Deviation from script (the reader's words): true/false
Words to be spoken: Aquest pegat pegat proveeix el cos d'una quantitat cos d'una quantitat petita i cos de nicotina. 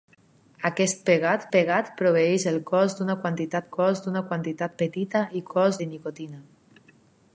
false